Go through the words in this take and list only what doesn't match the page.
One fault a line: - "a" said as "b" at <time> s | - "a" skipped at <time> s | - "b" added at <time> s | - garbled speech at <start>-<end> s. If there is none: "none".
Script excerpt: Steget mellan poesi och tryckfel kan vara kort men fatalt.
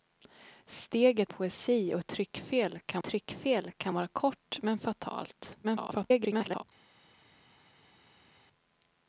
- "mellan" skipped at 1.3 s
- "tryckfel kan" added at 3.0 s
- garbled speech at 5.6-6.6 s